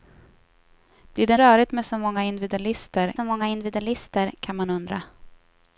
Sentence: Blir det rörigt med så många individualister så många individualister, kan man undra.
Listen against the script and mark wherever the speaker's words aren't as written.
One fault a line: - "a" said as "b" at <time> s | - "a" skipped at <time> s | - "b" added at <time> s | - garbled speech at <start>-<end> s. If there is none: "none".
none